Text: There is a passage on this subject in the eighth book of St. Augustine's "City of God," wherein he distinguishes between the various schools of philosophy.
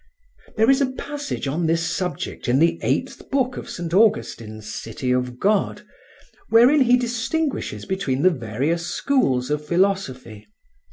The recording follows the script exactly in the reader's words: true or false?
true